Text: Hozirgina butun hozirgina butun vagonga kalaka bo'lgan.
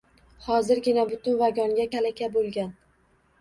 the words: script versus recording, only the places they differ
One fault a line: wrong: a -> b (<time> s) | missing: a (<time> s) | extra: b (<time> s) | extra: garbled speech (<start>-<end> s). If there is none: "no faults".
missing: hozirgina butun (1.4 s)